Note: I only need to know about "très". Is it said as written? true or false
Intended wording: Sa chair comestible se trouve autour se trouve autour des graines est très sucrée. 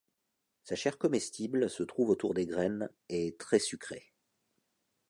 true